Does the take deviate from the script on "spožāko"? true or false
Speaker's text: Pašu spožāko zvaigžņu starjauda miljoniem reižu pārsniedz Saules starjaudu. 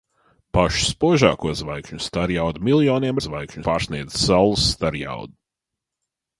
false